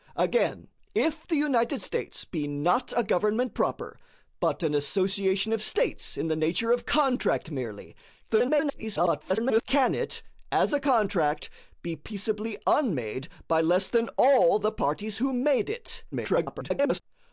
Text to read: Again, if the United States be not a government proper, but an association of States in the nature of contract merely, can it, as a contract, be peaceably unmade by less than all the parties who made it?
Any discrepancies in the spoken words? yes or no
yes